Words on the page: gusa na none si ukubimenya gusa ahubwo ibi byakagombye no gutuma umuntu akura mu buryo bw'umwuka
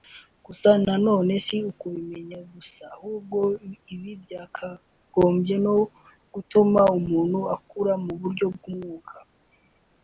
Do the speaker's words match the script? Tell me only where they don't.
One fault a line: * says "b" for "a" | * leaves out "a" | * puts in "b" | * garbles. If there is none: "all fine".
all fine